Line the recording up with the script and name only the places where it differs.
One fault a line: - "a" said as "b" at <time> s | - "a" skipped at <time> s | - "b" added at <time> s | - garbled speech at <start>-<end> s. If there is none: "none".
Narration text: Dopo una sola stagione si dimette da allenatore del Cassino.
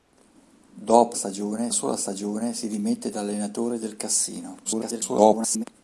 - "una" said as "stagione" at 1.1 s
- garbled speech at 4.6-5.6 s